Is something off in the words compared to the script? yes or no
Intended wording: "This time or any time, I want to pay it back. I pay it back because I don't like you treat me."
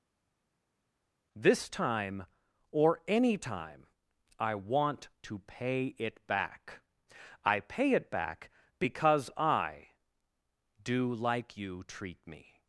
yes